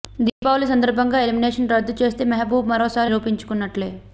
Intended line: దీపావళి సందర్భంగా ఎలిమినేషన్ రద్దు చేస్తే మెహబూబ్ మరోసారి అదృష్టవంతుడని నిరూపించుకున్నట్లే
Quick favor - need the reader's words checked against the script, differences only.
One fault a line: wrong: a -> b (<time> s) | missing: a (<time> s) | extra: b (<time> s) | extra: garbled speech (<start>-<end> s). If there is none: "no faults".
missing: అదృష్టవంతుడని (3.1 s)